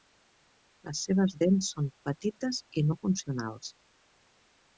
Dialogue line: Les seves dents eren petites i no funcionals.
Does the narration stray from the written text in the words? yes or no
yes